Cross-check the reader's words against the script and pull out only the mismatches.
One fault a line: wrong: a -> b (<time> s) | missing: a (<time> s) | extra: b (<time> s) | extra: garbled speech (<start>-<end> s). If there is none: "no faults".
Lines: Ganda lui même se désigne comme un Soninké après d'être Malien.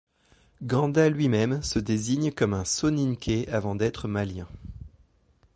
wrong: après -> avant (3.5 s)